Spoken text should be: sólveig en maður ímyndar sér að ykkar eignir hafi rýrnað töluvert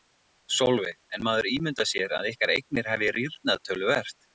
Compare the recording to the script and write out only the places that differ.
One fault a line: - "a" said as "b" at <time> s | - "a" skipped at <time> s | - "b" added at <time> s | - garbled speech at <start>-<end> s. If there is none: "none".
none